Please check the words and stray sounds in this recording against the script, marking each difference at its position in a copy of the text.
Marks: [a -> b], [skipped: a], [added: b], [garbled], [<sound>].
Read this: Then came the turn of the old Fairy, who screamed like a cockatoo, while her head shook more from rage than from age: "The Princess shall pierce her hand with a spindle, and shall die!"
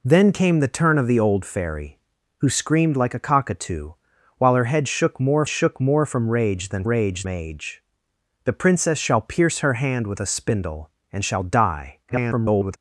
Then came the turn of the old Fairy, who screamed like a cockatoo, while her head shook more [added: shook more] from rage than [from -> rage] age: "The Princess shall pierce her hand with a spindle, and shall die!" [garbled]